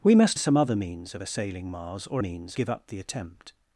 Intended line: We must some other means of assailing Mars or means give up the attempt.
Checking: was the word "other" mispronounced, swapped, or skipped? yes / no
no